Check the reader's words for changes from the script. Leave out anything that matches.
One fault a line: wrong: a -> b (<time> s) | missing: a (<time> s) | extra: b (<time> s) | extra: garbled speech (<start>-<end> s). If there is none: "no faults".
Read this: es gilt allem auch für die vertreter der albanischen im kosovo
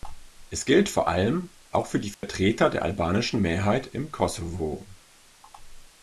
extra: vor (0.9 s)
extra: mehrheit (3.4 s)